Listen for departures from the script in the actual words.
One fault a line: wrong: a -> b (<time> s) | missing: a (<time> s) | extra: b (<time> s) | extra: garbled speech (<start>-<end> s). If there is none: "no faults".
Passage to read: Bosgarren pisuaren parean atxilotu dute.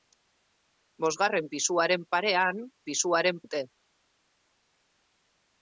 wrong: atxilotu -> pisuaren (2.9 s)